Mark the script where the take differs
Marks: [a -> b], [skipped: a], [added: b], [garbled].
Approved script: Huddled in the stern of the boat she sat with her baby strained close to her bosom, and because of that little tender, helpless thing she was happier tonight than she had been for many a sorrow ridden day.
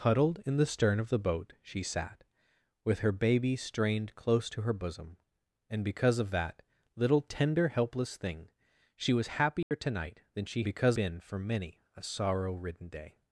Huddled in the stern of the boat she sat with her baby strained close to her bosom, and because of that little tender, helpless thing she was happier tonight than she [had -> because] been for many a sorrow ridden day.